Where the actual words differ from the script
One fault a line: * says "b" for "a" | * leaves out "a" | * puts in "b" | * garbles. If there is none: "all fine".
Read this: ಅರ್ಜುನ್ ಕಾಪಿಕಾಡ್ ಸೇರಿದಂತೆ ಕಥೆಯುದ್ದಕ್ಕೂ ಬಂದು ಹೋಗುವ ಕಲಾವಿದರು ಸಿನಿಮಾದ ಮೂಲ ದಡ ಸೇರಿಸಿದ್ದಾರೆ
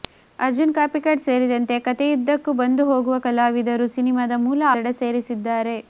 all fine